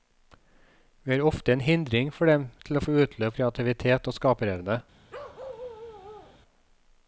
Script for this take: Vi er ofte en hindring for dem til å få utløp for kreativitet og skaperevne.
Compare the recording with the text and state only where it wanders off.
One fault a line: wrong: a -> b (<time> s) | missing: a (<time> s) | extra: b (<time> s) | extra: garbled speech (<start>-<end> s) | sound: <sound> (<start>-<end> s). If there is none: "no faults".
missing: for (3.4 s)
sound: bark (5.1-6.4 s)